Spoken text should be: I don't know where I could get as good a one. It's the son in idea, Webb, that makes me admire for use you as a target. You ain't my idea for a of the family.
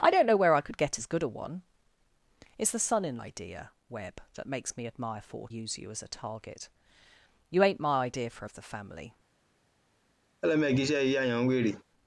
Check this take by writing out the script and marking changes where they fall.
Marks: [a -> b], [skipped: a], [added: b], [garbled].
I don't know where I could get as good a one. It's the son in idea, Webb, that makes me admire for use you as a target. You ain't my idea for a of the family.